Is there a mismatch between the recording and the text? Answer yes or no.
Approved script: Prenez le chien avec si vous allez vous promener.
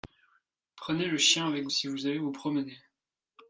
no